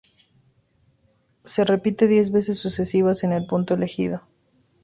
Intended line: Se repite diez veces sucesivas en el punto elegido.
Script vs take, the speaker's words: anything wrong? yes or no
no